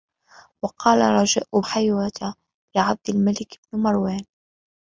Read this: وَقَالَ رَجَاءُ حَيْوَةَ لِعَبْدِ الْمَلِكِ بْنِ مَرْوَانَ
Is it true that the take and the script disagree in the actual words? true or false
false